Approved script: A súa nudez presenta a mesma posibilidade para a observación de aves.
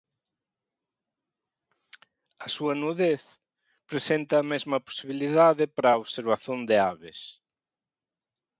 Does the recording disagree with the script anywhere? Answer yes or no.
no